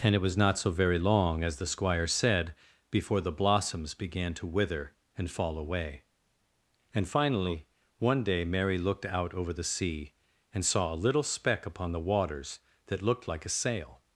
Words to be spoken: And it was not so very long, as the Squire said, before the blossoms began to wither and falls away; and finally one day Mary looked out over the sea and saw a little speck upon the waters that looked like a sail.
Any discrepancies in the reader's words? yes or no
yes